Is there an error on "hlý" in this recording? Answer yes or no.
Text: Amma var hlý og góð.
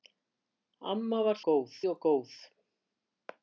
yes